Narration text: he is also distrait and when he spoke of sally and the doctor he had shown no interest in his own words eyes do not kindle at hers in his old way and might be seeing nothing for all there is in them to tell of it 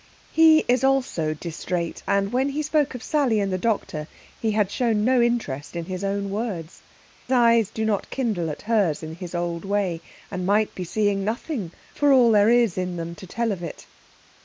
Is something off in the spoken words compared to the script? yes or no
no